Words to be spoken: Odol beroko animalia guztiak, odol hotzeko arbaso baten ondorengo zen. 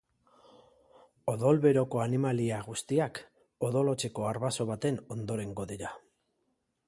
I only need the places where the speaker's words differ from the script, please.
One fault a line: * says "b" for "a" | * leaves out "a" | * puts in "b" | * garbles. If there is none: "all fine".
* says "dira" for "zen"